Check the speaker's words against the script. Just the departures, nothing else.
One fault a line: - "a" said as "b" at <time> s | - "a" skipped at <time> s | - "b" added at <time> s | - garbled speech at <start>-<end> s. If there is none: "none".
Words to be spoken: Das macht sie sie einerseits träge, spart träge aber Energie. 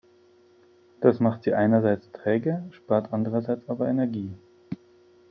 - "sie" skipped at 1.5 s
- "träge" said as "andererseits" at 3.1 s